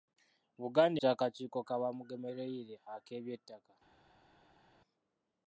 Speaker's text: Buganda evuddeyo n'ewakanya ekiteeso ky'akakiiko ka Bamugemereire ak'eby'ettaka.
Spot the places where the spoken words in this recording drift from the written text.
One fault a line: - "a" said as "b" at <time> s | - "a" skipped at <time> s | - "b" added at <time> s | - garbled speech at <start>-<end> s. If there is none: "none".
- "evuddeyo n'ewakanya ekiteeso" skipped at 1.0 s